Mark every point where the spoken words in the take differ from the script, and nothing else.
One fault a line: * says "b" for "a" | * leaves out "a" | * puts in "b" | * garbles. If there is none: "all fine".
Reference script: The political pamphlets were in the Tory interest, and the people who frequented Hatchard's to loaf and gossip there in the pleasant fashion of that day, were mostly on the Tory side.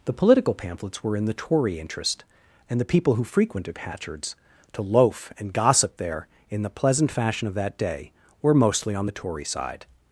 all fine